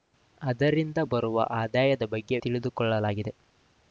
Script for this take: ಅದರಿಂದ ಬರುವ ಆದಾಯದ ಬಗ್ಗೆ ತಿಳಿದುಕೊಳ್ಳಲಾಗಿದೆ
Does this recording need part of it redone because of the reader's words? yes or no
no